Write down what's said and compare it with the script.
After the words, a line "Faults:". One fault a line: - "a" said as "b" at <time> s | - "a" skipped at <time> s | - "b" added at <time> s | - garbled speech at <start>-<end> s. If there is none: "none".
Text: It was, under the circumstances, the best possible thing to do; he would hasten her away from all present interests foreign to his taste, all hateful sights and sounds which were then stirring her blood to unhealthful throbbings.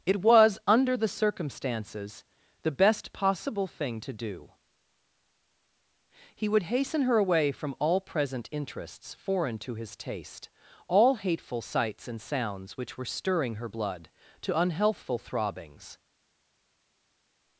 It was, under the circumstances, the best possible thing to do; he would hasten her away from all present interests foreign to his taste, all hateful sights and sounds which were stirring her blood to unhealthful throbbings.
Faults:
- "then" skipped at 13.0 s